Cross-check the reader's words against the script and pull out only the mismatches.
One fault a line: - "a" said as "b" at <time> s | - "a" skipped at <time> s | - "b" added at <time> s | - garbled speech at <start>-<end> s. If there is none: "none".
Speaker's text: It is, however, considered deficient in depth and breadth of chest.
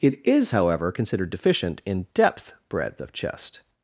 - "and" skipped at 2.5 s